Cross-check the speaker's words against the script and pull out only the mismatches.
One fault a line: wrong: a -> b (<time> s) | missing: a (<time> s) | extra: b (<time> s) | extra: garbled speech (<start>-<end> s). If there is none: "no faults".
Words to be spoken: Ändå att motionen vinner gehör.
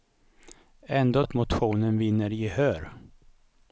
no faults